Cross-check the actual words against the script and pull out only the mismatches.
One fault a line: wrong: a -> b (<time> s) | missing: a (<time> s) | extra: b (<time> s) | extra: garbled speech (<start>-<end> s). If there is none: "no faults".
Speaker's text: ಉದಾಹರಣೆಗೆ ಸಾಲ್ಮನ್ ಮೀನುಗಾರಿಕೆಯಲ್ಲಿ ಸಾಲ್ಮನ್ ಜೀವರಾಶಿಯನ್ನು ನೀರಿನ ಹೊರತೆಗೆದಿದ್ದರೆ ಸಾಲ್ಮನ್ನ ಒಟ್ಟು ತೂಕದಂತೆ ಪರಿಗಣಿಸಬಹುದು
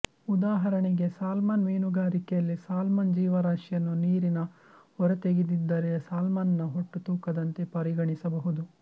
no faults